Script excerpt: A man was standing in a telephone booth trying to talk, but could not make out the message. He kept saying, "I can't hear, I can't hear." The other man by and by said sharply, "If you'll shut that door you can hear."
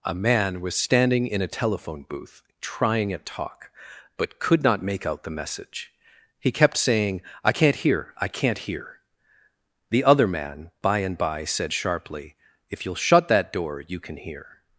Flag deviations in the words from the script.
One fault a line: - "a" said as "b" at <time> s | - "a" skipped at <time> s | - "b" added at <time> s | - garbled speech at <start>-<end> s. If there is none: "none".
- "to" said as "at" at 3.1 s